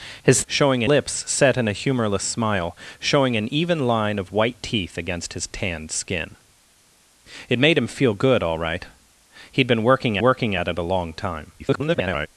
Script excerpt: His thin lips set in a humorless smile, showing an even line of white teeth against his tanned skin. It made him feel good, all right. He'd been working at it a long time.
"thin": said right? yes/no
no